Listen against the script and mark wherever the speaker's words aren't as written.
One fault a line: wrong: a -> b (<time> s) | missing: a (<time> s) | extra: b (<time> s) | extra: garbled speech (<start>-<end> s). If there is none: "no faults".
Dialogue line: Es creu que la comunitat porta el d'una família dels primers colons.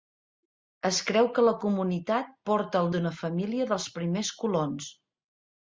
no faults